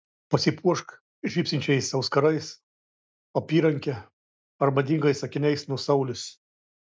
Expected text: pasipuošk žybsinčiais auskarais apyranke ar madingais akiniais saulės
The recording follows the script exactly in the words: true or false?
false